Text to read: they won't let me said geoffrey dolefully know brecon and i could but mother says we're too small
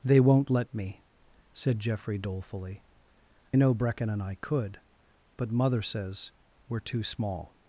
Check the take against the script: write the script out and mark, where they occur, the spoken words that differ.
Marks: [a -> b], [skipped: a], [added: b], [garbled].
they won't let me said geoffrey dolefully know brecon and i could but mother says we're too small